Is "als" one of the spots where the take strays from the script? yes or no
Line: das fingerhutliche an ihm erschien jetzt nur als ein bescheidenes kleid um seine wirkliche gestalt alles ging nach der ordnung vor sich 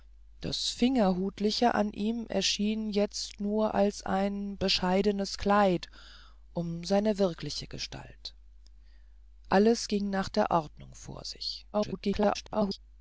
no